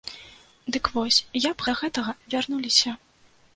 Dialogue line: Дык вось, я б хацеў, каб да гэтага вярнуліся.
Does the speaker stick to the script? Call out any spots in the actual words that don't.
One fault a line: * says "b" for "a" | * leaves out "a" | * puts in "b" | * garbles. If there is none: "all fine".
* leaves out "хацеў каб"